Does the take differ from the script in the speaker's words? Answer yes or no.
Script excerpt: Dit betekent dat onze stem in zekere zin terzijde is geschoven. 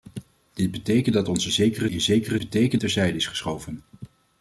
yes